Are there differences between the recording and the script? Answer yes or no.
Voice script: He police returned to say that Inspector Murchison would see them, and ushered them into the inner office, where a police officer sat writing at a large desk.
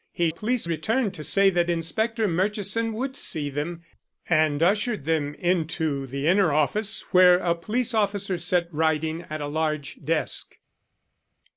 no